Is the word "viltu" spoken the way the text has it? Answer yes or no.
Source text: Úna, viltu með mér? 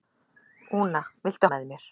yes